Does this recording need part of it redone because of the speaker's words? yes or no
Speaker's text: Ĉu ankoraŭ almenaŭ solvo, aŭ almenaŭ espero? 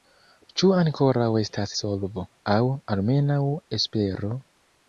yes